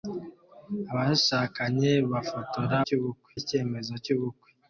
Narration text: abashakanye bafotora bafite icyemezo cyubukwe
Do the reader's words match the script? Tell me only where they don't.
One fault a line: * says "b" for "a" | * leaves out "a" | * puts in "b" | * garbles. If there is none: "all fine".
* says "cyubukwe" for "bafite"